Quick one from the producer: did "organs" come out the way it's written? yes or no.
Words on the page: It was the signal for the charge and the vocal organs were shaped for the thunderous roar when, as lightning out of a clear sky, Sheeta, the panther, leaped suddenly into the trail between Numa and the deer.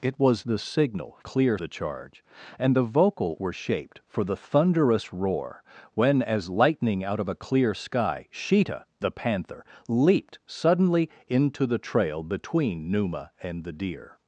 no